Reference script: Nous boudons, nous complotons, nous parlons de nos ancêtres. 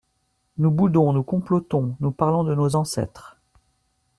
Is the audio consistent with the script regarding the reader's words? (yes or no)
yes